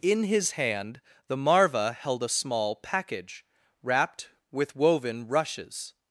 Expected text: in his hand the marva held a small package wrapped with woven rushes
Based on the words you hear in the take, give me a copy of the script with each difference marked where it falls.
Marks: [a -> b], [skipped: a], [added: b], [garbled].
in his hand the marva held a small package wrapped with woven rushes